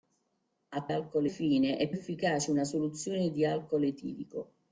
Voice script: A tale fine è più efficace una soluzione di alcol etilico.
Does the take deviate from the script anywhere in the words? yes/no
yes